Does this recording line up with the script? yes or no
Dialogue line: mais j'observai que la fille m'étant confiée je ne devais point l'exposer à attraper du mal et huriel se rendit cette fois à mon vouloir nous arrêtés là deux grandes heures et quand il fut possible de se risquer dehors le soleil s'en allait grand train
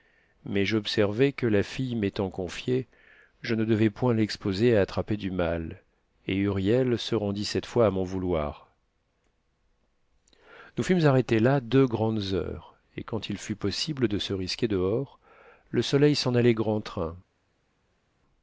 no